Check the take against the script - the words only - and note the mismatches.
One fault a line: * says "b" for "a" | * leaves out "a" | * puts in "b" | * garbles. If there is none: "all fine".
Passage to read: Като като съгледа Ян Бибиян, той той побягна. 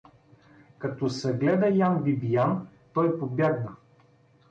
* leaves out "като"
* leaves out "той"